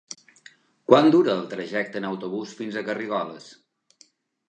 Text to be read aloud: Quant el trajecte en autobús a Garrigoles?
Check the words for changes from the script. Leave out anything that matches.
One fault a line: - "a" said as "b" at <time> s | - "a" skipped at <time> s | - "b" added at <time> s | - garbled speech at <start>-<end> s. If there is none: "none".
- "dura" added at 1.2 s
- "fins" added at 2.6 s